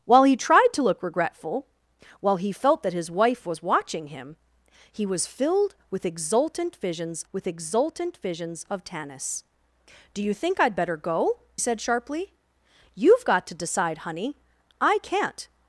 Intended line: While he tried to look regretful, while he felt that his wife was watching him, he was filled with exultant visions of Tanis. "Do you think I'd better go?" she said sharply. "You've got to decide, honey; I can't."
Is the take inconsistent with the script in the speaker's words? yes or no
yes